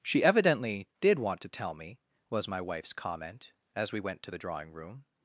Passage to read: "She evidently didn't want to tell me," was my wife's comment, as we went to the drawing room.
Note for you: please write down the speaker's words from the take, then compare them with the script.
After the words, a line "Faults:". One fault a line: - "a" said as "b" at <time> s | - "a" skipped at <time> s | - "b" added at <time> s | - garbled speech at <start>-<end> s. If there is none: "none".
"She evidently did want to tell me," was my wife's comment, as we went to the drawing room.
Faults:
- "didn't" said as "did" at 1.0 s